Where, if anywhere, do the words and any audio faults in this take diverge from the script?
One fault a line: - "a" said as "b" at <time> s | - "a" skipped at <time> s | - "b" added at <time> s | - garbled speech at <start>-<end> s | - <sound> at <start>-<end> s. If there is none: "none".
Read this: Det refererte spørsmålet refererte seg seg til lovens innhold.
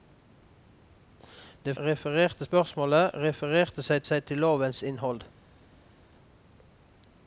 none